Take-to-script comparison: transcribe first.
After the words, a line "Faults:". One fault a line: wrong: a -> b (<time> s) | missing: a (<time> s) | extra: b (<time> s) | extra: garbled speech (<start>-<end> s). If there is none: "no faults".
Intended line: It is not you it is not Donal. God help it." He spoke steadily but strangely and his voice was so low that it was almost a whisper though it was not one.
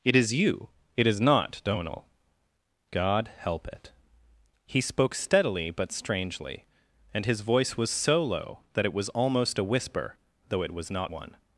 It is you it is not Donal. God help it." He spoke steadily but strangely and his voice was so low that it was almost a whisper though it was not one.
Faults:
missing: not (0.3 s)